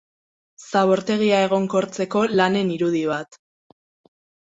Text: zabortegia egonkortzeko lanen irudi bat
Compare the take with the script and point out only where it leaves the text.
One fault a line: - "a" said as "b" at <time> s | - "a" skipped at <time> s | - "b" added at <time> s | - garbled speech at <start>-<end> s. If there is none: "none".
none